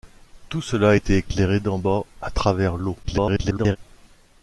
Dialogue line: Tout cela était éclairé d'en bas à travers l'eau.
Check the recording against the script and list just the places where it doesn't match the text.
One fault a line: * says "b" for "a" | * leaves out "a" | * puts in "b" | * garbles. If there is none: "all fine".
* garbles